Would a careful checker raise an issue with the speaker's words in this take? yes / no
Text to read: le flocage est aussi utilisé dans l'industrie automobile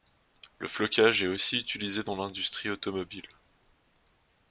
no